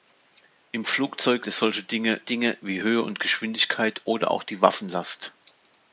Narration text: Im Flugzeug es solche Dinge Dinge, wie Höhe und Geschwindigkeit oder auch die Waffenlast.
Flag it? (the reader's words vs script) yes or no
no